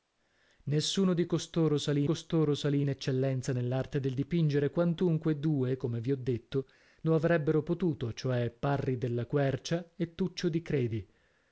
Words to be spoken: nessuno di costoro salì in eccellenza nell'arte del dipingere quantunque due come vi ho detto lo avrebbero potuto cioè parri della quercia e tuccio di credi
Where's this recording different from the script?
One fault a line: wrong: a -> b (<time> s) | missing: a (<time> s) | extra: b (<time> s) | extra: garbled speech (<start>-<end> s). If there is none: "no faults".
extra: costoro salì (2.0 s)